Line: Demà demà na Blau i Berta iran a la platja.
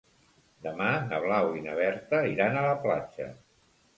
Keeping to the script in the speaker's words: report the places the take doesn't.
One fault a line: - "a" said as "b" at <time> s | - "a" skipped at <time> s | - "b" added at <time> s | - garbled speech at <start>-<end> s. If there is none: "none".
- "demà" skipped at 0.9 s
- "na" added at 1.6 s